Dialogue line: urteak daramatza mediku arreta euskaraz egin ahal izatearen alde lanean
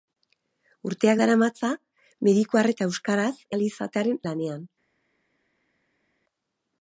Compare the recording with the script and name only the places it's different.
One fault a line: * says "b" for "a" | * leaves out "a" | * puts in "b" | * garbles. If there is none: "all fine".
* leaves out "egin"
* leaves out "alde"